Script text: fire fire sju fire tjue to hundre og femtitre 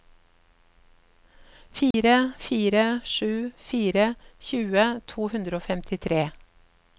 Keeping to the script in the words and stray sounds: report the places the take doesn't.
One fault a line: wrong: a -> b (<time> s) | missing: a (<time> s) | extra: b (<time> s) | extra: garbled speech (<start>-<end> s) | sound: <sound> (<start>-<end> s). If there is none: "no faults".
sound: dropout (1.9-1.9 s)